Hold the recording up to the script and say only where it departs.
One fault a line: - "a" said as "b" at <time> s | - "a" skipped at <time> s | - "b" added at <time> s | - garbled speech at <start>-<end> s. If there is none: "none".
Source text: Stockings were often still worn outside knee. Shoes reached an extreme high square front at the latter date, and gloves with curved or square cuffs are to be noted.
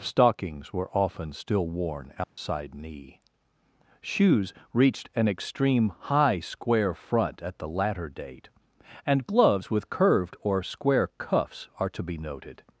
none